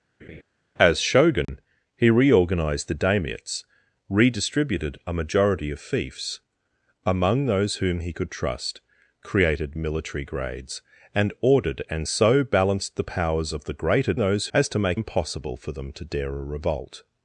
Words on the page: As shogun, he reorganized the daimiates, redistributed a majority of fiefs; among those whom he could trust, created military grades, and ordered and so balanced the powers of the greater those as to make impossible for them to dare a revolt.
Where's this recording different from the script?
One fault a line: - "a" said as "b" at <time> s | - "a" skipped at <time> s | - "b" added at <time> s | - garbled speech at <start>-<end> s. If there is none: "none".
none